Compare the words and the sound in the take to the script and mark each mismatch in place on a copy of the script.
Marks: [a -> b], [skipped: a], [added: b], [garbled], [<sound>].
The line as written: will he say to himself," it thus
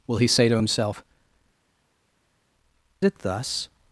will he say to himself," it thus